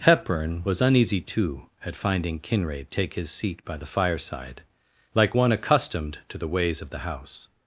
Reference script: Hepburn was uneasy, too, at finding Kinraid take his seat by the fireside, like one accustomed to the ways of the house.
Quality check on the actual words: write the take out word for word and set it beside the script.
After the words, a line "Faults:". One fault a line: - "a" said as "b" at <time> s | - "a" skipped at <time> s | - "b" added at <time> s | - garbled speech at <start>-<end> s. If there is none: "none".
Hepburn was uneasy, too, at finding Kinraid take his seat by the fireside, like one accustomed to the ways of the house.
Faults:
none